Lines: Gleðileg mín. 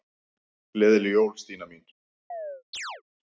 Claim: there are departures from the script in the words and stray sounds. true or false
true